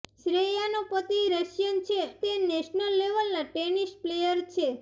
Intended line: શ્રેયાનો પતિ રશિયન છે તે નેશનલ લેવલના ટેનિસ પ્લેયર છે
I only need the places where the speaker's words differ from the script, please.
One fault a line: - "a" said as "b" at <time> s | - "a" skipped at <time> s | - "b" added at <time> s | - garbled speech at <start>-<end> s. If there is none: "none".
none